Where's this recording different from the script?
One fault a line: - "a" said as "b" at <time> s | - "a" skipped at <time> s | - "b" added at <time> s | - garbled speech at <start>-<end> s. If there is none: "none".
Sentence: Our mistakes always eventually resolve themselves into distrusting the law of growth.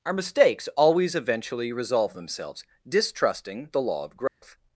- "into" skipped at 2.6 s